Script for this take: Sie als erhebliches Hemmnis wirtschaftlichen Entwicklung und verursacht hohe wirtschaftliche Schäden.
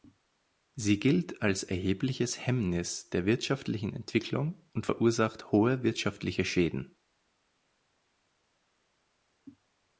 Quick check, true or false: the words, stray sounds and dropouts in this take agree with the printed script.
false